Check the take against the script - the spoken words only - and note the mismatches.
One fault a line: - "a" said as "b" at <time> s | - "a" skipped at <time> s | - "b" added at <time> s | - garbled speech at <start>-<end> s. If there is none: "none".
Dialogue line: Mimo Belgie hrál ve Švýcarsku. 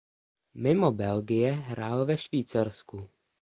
none